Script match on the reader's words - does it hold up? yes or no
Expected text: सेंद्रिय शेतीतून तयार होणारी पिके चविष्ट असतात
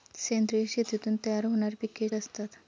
no